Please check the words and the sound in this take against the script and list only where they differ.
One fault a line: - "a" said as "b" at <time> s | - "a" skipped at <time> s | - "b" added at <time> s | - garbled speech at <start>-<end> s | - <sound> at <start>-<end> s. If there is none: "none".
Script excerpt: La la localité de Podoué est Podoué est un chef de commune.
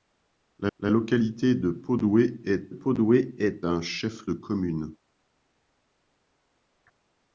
none